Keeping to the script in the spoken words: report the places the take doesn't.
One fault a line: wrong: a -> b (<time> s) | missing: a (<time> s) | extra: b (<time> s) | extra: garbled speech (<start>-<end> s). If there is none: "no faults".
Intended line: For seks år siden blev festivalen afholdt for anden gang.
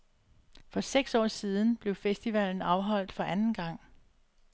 no faults